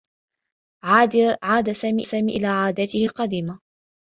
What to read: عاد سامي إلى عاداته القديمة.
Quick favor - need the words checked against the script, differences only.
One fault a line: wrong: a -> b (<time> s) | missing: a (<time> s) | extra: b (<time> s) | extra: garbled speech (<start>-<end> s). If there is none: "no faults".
extra: سامي (2.0 s)